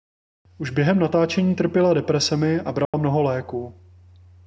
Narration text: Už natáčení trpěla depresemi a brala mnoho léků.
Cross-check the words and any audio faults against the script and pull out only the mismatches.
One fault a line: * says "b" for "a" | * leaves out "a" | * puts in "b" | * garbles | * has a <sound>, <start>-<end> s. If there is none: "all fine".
* puts in "během"
* has a dropout, 2.9-2.9 s